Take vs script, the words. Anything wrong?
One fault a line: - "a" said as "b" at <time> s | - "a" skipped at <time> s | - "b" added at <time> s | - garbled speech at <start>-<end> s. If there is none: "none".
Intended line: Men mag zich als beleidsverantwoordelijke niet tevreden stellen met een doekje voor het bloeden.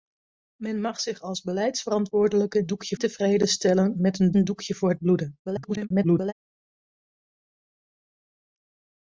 - "niet" said as "doekje" at 2.7 s
- "een" added at 4.3 s
- garbled speech at 5.5-6.3 s